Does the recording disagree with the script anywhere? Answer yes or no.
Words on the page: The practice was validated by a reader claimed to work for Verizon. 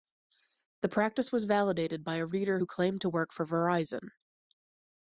yes